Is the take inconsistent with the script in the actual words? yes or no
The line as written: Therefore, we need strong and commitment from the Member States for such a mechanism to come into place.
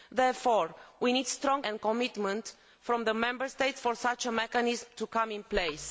no